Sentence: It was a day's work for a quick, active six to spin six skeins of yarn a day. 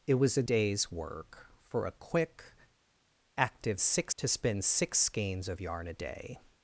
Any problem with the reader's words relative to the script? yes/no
no